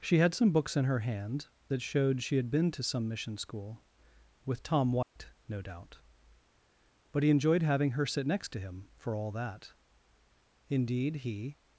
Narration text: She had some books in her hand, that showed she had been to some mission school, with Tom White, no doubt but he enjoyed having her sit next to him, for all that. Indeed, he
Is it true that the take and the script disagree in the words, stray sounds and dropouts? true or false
true